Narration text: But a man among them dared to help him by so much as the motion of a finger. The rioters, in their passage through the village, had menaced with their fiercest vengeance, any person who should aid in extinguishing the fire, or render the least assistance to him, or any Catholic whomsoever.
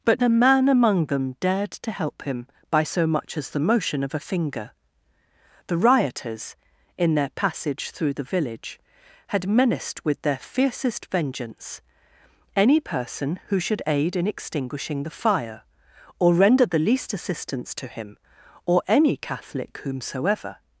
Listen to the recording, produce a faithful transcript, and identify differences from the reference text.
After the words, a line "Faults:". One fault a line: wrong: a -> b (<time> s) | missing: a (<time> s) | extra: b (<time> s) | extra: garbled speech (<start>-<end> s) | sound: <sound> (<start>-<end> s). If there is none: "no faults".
But a man among them dared to help him by so much as the motion of a finger. The rioters, in their passage through the village, had menaced with their fiercest vengeance, any person who should aid in extinguishing the fire, or render the least assistance to him, or any Catholic whomsoever.
Faults:
no faults